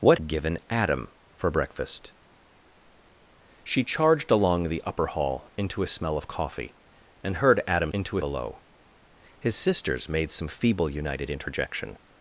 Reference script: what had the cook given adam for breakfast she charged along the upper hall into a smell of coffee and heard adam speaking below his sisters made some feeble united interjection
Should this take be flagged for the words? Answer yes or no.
yes